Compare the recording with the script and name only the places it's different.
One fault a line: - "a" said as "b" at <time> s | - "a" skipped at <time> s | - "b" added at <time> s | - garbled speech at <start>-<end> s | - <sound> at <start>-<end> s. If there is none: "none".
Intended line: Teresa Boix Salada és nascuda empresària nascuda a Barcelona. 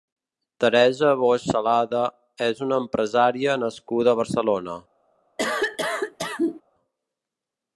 - "nascuda" said as "una" at 2.7 s
- cough at 5.4-6.6 s